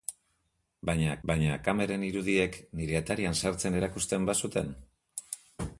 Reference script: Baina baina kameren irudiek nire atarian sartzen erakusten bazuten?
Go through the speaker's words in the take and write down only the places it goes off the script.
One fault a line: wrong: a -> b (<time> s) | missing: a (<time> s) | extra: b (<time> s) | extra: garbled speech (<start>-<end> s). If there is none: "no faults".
no faults